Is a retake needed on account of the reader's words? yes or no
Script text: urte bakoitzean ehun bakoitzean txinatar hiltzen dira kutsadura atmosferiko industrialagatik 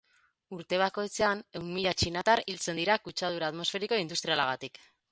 yes